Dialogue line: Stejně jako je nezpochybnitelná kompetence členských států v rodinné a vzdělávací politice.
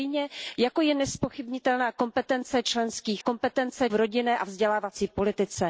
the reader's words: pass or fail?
fail